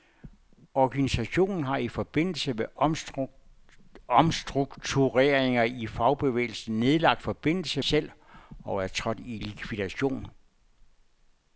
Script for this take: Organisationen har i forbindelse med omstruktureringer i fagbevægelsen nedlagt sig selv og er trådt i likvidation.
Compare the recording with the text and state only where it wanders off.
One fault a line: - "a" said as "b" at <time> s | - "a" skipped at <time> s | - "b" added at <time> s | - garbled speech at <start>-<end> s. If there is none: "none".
- "sig" said as "forbindelse" at 7.2 s